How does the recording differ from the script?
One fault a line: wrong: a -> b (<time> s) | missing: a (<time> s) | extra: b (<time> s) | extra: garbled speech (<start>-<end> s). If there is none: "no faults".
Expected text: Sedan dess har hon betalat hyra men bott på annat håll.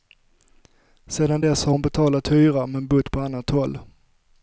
no faults